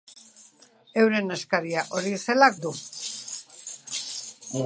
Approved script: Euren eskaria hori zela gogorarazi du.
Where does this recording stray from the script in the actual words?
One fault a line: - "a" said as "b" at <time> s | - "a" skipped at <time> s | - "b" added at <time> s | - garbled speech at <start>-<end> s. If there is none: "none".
- "gogorarazi" skipped at 2.5 s